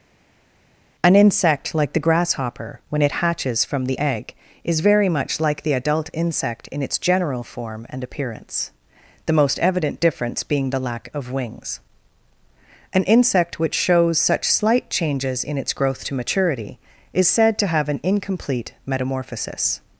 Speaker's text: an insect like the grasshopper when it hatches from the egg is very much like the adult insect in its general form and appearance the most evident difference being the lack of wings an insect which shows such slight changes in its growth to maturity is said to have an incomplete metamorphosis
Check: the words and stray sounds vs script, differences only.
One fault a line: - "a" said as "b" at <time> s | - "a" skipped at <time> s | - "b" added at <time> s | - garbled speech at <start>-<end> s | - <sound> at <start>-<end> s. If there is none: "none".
none